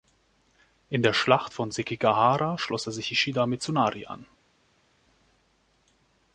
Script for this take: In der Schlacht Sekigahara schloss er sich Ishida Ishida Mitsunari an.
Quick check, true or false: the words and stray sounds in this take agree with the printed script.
false